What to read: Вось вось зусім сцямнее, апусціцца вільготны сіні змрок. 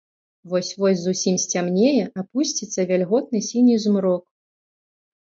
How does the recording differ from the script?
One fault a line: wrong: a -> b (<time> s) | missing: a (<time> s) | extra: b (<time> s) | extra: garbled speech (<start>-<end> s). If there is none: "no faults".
no faults